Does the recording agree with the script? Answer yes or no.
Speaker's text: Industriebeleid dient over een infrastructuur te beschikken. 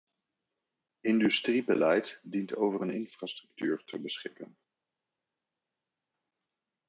yes